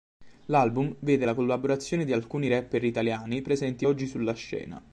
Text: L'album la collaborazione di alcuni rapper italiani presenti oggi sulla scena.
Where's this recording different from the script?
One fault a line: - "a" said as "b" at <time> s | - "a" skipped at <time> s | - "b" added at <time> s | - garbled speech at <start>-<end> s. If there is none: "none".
- "vede" added at 1.0 s